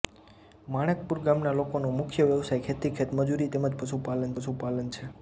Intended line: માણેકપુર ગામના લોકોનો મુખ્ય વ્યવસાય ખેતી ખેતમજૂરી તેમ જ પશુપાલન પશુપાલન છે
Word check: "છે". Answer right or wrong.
right